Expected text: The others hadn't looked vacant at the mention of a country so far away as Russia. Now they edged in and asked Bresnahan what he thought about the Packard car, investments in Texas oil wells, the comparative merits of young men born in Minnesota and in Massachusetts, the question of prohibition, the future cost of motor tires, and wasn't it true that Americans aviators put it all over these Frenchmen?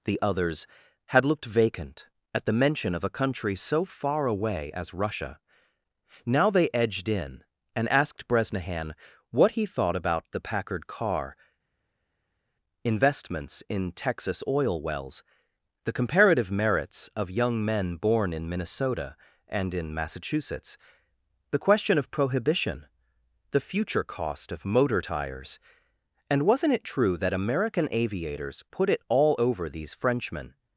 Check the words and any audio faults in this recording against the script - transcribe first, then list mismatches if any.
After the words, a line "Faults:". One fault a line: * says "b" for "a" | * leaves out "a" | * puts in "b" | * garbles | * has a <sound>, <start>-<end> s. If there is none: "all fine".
The others had looked vacant at the mention of a country so far away as Russia. Now they edged in and asked Bresnahan what he thought about the Packard car, investments in Texas oil wells, the comparative merits of young men born in Minnesota and in Massachusetts, the question of prohibition, the future cost of motor tires, and wasn't it true that American aviators put it all over these Frenchmen?
Faults:
* says "had" for "hadn't"
* says "American" for "Americans"